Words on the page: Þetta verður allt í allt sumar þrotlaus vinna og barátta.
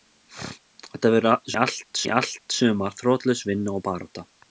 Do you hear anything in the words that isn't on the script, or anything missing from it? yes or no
no